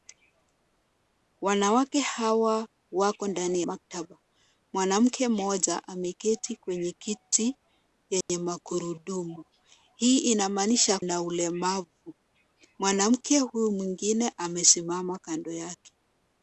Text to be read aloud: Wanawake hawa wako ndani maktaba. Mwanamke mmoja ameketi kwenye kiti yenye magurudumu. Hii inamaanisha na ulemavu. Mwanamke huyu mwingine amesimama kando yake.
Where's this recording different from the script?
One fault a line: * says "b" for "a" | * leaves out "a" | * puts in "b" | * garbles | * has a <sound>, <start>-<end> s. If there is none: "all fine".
* has a dropout, 8.2-8.3 s